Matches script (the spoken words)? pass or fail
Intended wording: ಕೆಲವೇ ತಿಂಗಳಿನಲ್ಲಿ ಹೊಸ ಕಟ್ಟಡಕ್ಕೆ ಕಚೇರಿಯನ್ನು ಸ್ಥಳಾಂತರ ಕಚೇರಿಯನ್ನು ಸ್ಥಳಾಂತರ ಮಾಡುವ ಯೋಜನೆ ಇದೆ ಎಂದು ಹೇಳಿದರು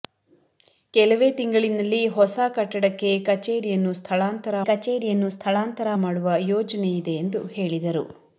pass